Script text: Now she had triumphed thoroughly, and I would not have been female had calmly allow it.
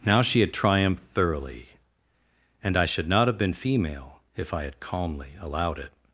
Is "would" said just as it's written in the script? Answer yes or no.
no